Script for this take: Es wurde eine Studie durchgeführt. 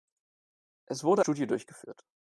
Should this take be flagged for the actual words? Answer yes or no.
yes